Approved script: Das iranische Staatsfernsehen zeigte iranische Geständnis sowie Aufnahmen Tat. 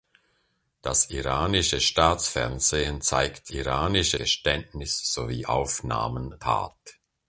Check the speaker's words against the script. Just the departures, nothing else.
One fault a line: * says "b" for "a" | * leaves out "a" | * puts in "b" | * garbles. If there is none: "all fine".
all fine